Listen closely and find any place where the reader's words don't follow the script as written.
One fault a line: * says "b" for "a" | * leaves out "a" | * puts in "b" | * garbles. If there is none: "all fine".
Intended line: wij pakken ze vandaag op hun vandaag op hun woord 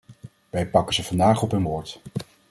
* leaves out "vandaag op hun"